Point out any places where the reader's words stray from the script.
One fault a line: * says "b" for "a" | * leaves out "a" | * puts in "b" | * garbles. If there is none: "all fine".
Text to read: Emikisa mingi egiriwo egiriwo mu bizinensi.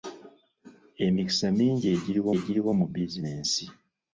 all fine